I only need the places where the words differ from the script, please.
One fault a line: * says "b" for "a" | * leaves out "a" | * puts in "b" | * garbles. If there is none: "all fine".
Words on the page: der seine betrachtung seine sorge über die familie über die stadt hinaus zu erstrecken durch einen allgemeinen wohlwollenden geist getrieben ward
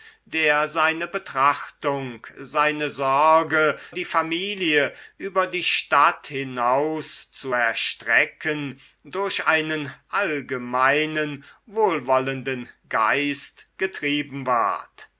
* leaves out "über"